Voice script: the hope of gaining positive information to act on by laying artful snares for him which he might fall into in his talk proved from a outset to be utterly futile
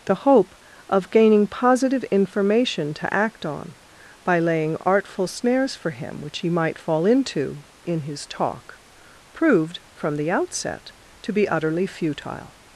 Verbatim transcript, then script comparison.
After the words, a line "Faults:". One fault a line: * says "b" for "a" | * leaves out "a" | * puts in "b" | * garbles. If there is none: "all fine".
the hope of gaining positive information to act on by laying artful snares for him which he might fall into in his talk proved from the outset to be utterly futile
Faults:
* says "the" for "a"